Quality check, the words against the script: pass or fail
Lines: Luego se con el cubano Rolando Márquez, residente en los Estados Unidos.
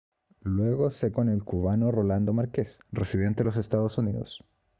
pass